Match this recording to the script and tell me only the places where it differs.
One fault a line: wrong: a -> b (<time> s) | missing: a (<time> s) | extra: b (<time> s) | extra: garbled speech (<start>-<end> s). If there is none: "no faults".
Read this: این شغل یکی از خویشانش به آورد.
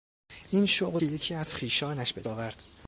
no faults